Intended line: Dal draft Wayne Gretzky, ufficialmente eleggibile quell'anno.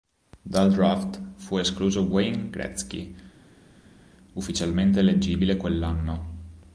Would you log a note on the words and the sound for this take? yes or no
yes